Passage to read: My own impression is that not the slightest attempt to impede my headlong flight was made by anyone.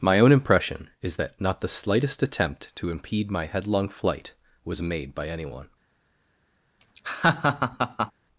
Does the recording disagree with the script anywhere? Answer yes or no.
no